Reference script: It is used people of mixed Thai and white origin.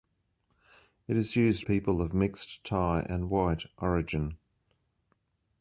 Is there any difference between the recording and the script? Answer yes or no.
no